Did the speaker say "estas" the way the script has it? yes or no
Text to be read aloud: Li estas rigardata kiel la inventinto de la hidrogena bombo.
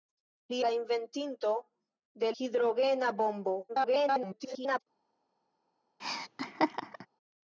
no